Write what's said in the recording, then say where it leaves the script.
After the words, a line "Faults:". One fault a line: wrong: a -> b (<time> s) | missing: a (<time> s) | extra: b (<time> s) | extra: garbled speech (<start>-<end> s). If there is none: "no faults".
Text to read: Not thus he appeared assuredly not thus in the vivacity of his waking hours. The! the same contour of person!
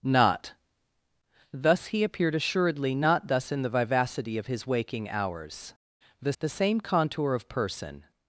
Not thus he appeared assuredly not thus in the vivacity of his waking hours. The! the same contour of person!
Faults:
no faults